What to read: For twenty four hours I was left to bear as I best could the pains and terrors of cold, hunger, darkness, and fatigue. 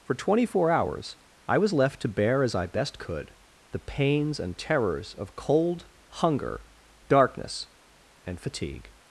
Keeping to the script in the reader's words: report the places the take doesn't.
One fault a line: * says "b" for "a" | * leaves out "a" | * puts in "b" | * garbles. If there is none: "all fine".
all fine